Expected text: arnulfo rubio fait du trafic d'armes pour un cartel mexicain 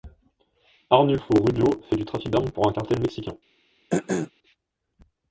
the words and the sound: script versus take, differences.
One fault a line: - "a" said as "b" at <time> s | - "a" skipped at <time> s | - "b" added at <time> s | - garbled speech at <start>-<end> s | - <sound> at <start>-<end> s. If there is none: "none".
- throat clearing at 3.9-4.3 s